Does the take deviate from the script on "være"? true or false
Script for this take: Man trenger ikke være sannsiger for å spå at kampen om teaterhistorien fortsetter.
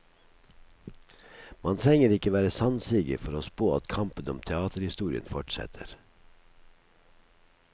false